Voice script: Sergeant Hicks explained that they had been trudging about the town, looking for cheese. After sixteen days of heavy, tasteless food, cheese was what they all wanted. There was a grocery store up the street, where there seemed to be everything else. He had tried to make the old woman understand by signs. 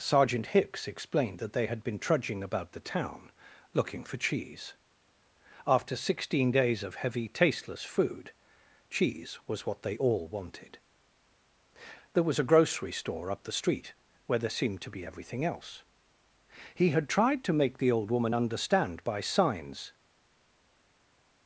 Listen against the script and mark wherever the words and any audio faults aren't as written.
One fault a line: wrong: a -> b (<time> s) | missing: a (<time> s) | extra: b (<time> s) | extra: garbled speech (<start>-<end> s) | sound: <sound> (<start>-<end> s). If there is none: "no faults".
no faults